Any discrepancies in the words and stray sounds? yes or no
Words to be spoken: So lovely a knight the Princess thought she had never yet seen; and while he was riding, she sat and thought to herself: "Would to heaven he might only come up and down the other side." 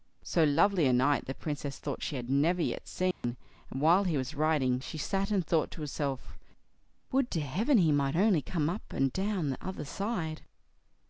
yes